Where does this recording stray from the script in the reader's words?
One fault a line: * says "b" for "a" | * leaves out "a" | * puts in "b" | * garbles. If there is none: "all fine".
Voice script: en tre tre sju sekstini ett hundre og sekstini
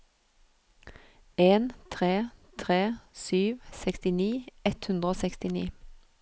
all fine